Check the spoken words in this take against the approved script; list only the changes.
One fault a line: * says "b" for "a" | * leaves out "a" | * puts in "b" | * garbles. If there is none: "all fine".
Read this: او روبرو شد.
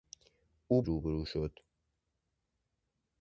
all fine